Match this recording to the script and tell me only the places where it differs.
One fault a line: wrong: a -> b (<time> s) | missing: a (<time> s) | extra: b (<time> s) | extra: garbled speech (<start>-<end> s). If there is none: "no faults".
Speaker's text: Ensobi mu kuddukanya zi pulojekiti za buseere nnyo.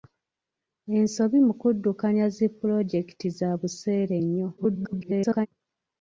extra: garbled speech (4.6-5.5 s)